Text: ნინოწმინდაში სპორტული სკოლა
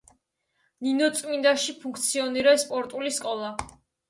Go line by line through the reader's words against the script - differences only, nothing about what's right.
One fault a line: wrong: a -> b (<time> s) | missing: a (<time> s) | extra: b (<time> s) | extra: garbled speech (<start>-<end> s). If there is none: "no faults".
extra: ფუნქციონირებს (1.8 s)